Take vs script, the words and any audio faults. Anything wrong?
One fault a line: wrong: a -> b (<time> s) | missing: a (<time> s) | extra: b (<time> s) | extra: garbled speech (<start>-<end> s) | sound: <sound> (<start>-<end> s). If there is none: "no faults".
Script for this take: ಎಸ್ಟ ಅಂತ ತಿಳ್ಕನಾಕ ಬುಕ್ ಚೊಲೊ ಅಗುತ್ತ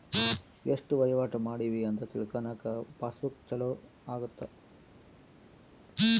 extra: ವಹಿವಾಟ ಮಾಡಿವಿ (0.9 s)
extra: ಪಾಸ್ (3.0 s)